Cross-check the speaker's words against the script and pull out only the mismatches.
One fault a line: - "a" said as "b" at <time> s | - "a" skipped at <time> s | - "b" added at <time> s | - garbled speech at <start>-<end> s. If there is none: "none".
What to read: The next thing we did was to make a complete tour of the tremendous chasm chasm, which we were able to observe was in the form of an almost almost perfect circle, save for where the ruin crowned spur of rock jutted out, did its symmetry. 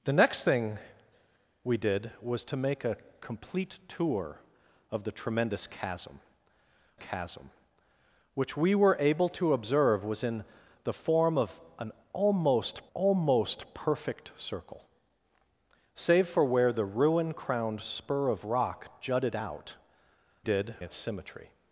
none